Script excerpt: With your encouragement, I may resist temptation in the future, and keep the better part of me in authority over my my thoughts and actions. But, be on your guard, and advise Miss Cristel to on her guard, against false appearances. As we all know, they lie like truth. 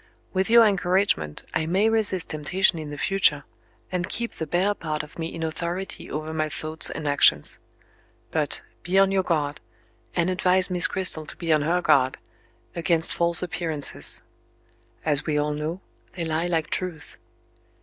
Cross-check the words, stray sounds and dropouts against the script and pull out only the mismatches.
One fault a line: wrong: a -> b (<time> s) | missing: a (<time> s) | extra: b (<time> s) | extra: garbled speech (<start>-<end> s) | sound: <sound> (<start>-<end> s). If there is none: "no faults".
missing: my (6.5 s)
extra: be (11.4 s)